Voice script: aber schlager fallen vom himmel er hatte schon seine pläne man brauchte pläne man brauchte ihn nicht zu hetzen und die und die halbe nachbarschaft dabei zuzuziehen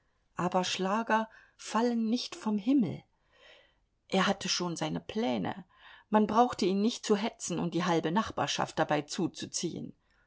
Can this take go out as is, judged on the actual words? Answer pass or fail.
fail